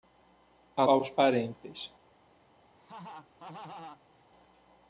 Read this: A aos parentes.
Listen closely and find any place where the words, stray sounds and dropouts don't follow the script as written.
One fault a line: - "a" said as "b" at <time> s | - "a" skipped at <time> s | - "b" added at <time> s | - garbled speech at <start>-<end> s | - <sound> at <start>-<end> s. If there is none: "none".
- laugh at 2.7-4.2 s